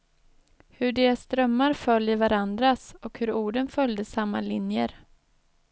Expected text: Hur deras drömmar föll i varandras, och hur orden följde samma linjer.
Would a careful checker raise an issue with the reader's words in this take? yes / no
no